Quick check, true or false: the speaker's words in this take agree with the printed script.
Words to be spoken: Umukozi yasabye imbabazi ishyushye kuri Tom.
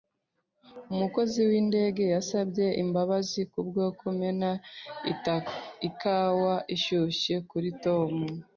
false